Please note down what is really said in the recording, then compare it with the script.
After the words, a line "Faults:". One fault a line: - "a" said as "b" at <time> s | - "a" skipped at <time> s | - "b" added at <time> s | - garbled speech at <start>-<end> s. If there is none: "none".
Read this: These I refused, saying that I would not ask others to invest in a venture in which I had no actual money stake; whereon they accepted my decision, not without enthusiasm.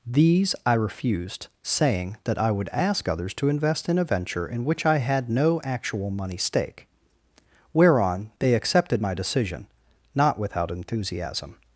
These I refused, saying that I would ask others to invest in a venture in which I had no actual money stake; whereon they accepted my decision, not without enthusiasm.
Faults:
- "not" skipped at 2.7 s